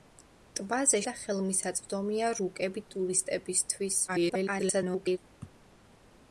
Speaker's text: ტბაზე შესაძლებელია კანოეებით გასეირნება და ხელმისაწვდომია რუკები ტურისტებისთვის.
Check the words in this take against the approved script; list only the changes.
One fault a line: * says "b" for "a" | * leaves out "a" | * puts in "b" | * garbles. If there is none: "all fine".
* leaves out "შესაძლებელია კანოეებით გასეირნება"
* garbles